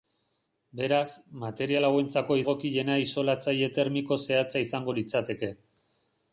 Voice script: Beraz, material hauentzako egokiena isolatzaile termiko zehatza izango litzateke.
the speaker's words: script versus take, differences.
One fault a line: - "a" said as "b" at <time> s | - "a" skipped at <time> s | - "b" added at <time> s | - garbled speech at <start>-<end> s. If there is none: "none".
none